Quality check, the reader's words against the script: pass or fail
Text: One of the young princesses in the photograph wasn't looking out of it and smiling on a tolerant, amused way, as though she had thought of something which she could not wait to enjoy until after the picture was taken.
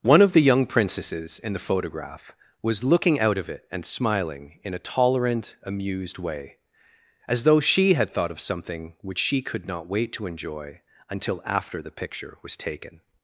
fail